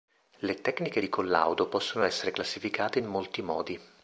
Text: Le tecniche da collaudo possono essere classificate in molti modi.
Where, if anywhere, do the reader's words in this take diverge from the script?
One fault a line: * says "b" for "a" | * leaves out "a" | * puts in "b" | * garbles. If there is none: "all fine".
* says "di" for "da"